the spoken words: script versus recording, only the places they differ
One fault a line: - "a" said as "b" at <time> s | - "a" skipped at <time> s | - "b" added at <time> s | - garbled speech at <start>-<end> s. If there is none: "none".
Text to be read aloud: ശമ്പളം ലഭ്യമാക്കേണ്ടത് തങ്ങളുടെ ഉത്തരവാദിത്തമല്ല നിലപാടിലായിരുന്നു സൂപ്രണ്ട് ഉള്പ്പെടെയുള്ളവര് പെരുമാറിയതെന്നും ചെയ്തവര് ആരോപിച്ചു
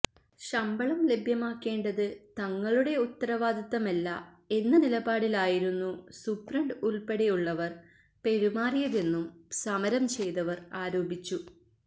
- "എന്ന" added at 4.5 s
- "സമരം" added at 9.6 s